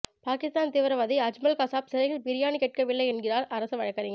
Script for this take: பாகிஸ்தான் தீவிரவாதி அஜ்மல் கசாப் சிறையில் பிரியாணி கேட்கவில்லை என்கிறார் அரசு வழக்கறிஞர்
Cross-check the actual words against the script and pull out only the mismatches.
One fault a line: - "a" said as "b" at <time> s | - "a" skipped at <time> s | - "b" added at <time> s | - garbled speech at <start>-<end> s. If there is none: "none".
none